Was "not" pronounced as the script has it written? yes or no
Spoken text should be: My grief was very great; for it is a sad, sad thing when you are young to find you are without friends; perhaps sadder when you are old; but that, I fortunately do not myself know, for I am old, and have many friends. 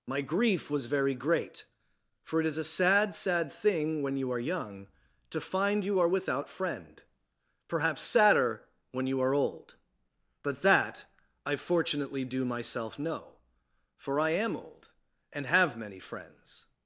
no